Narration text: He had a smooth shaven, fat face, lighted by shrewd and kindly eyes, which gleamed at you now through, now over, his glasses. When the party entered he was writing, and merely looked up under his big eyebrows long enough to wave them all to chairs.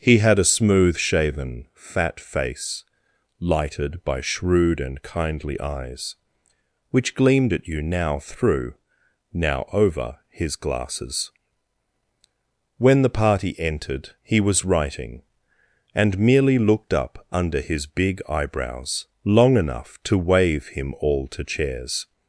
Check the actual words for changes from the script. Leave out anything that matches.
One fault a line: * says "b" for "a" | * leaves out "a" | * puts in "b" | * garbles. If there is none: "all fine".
* says "him" for "them"